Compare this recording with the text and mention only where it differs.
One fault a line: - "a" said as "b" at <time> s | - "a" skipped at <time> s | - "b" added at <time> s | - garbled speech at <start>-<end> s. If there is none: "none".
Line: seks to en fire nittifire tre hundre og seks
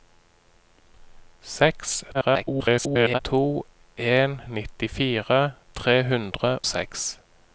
- garbled speech at 2.1-3.2 s
- "fire" skipped at 4.4 s
- "og" skipped at 6.6 s